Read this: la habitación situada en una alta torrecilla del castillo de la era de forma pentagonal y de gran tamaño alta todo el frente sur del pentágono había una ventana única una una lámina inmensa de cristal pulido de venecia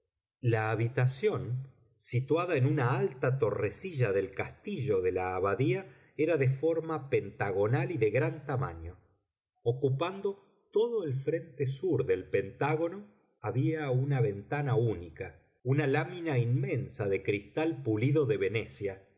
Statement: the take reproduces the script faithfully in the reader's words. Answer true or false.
false